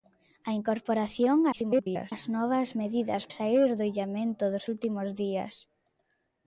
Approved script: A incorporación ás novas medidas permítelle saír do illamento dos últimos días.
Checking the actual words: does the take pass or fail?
fail